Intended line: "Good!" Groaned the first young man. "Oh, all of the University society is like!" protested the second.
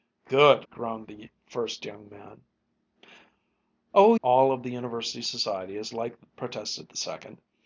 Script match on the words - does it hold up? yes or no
yes